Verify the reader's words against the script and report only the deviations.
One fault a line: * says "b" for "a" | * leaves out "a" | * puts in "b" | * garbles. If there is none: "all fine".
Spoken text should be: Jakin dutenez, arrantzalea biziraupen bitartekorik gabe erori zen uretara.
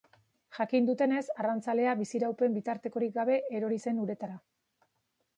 all fine